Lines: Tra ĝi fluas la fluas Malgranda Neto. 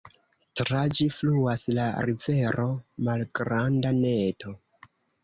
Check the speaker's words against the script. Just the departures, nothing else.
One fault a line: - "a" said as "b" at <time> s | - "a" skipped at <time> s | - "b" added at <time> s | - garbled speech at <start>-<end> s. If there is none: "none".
- "fluas" said as "rivero" at 2.0 s